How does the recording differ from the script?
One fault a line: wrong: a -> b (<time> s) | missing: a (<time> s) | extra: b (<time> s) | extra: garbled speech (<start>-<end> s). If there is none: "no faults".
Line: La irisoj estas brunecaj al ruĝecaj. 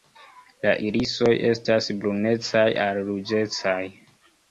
no faults